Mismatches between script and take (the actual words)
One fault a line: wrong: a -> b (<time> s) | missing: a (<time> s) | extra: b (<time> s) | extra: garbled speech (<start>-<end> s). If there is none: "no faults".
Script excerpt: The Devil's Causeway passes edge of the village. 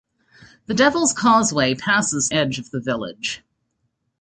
no faults